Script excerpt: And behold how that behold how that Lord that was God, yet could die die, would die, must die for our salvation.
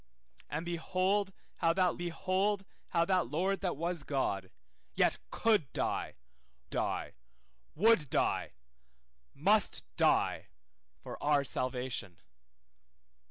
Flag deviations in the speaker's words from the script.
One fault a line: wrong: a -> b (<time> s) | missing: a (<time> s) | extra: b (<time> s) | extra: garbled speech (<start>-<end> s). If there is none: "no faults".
no faults